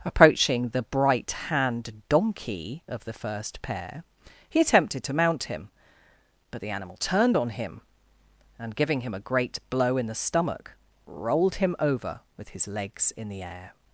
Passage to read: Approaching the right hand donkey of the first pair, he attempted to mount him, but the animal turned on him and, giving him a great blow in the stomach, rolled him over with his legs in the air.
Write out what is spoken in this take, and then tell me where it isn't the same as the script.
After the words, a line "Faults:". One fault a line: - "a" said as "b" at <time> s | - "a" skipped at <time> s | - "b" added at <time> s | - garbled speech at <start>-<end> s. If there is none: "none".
Approaching the bright hand donkey of the first pair, he attempted to mount him, but the animal turned on him and, giving him a great blow in the stomach, rolled him over with his legs in the air.
Faults:
- "right" said as "bright" at 0.8 s